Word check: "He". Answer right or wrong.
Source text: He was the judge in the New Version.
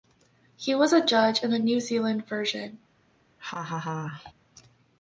right